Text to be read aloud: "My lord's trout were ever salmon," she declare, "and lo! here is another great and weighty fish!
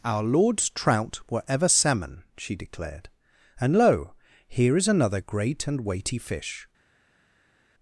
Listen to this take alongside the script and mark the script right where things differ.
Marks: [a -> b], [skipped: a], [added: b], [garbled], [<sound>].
["My -> Our] lord's trout were ever salmon," she [declare, -> declared] "and lo! here is another great and weighty fish!